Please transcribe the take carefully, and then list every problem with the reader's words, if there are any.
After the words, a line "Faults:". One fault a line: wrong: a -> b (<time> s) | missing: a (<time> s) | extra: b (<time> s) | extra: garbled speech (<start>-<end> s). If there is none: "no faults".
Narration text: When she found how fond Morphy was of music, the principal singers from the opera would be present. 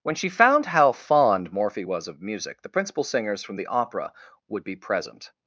When she found how fond Morphy was of music, the principal singers from the opera would be present.
Faults:
no faults